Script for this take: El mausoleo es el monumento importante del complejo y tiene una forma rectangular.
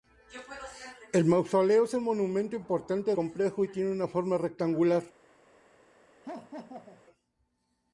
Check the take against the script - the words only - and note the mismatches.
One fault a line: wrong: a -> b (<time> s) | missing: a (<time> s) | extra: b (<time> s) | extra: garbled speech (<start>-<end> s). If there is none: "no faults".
missing: del (3.1 s)